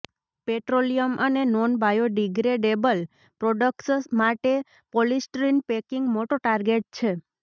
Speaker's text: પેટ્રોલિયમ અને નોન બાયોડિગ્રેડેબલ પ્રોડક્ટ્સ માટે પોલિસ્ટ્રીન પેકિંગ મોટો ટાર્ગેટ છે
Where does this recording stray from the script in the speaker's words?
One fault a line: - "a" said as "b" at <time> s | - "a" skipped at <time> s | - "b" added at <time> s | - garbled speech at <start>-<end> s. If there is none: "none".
none